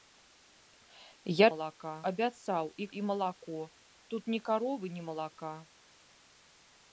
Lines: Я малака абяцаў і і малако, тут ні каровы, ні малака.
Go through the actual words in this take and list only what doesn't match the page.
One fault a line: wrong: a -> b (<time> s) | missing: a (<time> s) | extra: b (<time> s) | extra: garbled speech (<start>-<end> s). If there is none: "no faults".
no faults